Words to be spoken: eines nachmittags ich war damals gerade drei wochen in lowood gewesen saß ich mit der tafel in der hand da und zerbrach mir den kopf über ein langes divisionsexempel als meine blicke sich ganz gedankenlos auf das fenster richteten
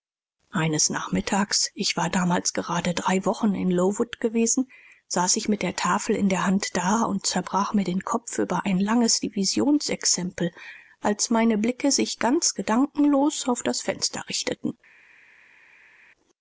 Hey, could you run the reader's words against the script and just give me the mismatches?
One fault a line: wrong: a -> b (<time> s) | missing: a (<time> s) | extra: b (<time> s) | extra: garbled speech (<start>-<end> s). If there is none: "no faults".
no faults